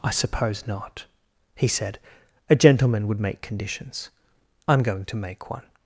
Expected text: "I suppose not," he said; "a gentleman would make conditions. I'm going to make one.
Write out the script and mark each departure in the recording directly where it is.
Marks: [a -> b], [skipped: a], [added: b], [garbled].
"I suppose not," he said; "a gentleman would make conditions. I'm going to make one.